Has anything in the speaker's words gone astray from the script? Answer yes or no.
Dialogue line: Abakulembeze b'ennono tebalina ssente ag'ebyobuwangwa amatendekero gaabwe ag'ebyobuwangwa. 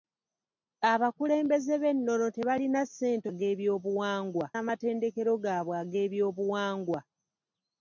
no